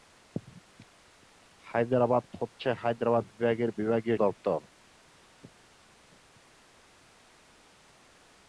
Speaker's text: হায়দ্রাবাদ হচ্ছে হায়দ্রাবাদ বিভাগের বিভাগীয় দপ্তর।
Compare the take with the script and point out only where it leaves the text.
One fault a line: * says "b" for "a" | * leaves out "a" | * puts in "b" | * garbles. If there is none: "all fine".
all fine